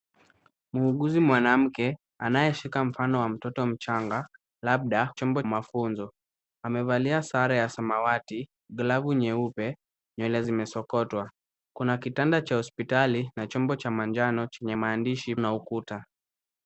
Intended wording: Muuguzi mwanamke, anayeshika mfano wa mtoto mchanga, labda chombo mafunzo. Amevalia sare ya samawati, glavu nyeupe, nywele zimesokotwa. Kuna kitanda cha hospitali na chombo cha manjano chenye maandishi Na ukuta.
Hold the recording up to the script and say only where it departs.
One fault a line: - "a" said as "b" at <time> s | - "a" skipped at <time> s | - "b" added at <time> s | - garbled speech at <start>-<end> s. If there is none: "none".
none